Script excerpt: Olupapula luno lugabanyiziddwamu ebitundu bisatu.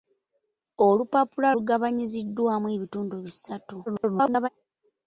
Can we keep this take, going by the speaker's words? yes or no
no